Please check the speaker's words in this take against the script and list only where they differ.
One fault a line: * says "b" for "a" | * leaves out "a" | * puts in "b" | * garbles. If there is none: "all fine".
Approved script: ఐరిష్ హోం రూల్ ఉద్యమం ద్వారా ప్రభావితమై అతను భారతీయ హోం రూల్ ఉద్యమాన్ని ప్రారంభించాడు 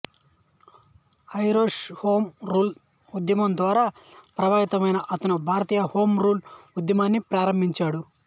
all fine